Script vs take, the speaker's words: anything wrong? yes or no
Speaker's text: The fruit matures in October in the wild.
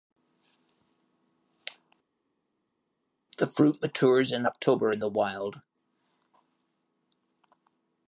no